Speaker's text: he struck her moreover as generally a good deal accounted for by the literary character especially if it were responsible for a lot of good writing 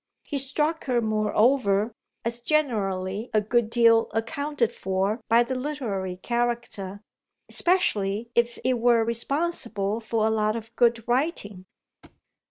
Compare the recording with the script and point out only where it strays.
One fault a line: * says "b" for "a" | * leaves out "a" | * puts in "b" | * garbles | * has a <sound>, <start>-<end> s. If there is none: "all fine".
* has a thud, 12.0-12.2 s